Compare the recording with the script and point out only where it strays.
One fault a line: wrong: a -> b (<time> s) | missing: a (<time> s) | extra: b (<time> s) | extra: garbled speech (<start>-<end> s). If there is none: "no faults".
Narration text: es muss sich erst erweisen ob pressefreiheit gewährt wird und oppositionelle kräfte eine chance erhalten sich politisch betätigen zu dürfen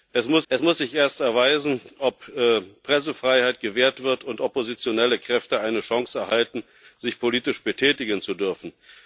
extra: es muss (0.5 s)